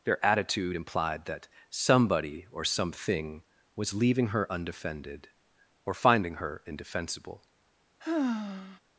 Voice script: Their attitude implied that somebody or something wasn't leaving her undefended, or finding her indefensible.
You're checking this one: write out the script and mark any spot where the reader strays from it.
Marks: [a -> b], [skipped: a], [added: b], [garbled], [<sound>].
Their attitude implied that somebody or something [wasn't -> was] leaving her undefended, or finding her indefensible. [sigh]